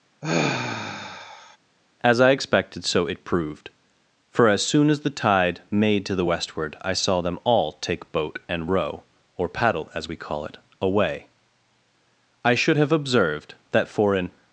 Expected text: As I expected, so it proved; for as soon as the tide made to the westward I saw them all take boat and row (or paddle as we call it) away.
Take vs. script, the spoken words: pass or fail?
fail